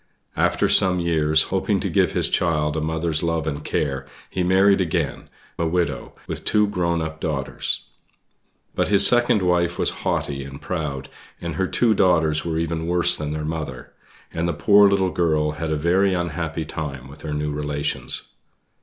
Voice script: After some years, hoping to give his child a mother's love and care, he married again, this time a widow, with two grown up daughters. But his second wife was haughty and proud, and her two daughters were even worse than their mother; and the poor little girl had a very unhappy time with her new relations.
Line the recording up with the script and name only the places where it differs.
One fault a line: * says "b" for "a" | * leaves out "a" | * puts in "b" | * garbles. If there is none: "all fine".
* leaves out "this time"